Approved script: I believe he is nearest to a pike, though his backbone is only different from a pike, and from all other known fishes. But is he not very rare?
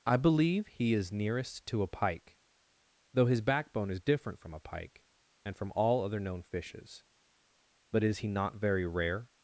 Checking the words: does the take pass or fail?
fail